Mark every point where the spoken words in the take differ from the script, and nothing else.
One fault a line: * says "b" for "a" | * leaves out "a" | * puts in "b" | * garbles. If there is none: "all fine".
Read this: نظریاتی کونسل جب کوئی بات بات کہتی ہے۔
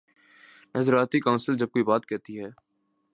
* leaves out "بات"